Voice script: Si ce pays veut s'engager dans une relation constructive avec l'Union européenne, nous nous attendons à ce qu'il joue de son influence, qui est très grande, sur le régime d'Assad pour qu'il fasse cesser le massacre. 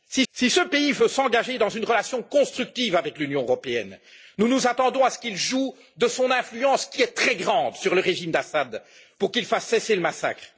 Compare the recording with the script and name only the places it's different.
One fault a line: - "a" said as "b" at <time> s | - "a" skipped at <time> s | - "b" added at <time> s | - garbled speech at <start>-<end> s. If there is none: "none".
- "si" added at 0.3 s